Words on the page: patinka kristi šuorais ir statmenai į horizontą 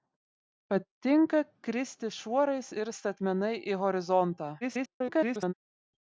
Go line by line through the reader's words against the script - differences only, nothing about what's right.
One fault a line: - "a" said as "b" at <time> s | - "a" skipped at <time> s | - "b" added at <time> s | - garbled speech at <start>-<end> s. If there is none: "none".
- garbled speech at 4.6-5.5 s